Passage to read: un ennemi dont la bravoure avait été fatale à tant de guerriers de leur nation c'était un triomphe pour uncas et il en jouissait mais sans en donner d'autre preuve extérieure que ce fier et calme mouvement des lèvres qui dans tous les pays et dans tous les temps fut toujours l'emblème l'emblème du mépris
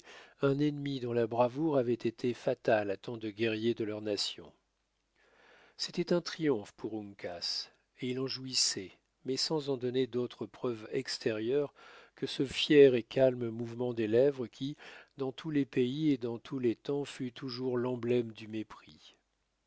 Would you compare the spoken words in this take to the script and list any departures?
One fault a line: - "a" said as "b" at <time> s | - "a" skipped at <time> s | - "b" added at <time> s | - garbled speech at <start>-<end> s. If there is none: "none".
- "l'emblème" skipped at 18.3 s